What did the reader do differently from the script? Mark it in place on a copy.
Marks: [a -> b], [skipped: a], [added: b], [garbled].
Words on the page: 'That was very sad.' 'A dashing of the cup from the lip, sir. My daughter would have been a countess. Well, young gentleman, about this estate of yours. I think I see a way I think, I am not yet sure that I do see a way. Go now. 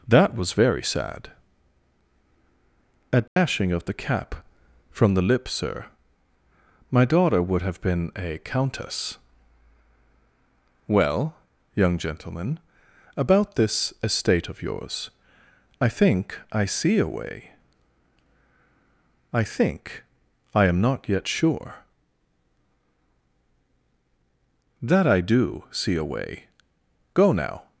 'That was very sad.' 'A dashing of the [cup -> cap] from the lip, sir. My daughter would have been a countess. Well, young gentleman, about this estate of yours. I think I see a way I think, I am not yet sure that I do see a way. Go now.